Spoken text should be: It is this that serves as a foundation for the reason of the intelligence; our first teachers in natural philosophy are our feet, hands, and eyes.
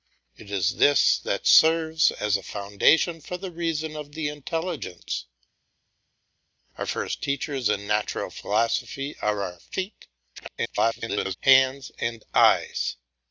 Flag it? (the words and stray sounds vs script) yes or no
yes